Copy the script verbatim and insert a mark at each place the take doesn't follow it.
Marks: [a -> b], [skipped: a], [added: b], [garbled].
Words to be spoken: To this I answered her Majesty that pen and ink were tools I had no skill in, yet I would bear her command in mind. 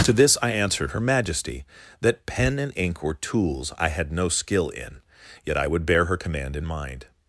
To this I answered her Majesty that pen and ink were tools I had no skill in, yet I would bear her command in mind.